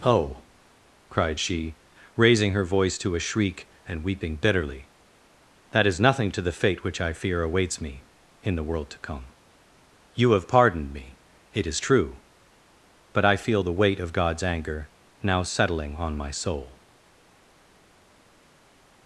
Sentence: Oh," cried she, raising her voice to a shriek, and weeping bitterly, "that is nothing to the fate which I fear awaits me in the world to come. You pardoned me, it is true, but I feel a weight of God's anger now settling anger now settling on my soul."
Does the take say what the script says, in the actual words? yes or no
no